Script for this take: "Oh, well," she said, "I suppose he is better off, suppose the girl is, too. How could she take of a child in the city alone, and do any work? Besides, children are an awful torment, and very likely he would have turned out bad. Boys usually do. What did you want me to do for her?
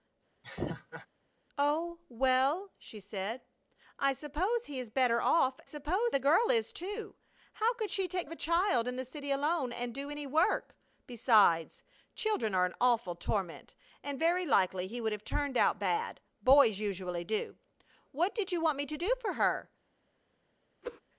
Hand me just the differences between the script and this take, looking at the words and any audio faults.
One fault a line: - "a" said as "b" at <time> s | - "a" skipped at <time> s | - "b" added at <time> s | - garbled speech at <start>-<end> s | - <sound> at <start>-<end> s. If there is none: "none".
- laugh at 0.4-1.1 s
- whoosh at 20.8-21.0 s